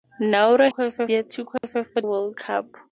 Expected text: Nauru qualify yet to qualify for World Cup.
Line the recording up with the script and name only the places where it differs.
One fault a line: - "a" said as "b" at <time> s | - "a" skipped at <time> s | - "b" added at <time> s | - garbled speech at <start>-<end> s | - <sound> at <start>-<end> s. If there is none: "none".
- dropout at 1.6-1.6 s